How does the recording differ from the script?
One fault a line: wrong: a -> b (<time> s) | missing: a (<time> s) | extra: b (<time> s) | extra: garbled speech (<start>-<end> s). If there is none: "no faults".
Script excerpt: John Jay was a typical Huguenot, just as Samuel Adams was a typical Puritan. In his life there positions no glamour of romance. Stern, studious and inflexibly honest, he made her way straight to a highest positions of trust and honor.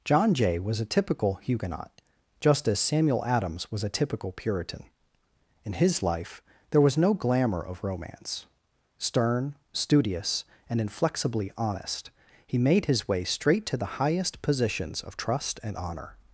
wrong: positions -> was (6.8 s)
wrong: her -> his (12.8 s)
wrong: a -> the (13.8 s)